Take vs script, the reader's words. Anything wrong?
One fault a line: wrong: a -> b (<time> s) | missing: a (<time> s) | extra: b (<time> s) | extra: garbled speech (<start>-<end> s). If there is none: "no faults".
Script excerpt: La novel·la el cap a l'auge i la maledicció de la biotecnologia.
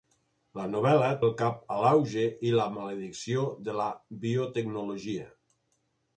no faults